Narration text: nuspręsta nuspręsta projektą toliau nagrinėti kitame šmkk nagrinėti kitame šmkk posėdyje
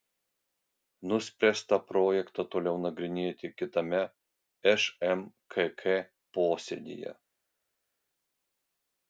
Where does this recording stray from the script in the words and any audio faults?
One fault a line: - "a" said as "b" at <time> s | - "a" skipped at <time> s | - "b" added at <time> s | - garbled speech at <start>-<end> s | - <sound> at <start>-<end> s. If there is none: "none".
- "nuspręsta" skipped at 1.8 s
- "nagrinėti kitame šmkk" skipped at 5.8 s